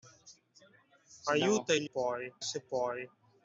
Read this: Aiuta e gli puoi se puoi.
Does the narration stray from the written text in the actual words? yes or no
no